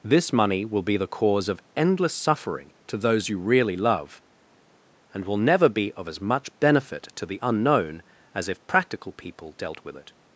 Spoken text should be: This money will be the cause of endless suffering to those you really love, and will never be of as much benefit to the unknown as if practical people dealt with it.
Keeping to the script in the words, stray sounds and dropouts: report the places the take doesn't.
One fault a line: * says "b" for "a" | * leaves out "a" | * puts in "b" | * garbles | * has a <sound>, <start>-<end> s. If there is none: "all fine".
all fine